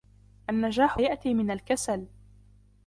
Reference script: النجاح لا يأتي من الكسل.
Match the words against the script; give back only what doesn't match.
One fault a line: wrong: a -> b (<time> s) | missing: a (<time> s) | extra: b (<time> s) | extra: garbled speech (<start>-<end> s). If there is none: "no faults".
missing: لا (1.0 s)